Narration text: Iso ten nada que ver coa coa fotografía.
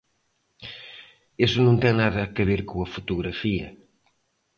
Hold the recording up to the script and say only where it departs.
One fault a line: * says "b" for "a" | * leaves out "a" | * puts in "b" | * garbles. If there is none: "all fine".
* puts in "non"
* leaves out "coa"